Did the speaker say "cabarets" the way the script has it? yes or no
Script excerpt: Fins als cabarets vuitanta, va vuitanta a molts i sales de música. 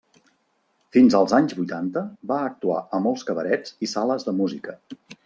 no